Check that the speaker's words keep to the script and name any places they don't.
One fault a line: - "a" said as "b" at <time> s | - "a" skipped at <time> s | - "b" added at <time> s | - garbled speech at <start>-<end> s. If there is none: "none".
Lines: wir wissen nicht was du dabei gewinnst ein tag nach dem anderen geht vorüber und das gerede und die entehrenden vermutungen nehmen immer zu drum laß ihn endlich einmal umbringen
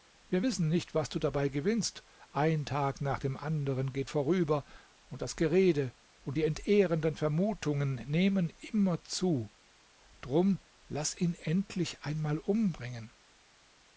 none